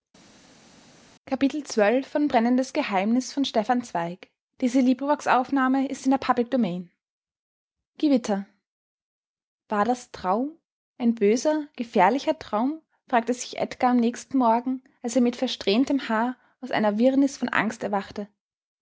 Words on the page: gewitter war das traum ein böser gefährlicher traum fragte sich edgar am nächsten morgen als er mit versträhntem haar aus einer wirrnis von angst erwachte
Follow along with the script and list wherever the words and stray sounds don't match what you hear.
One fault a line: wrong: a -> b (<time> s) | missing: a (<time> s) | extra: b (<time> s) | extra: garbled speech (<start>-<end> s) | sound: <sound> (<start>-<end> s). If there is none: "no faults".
no faults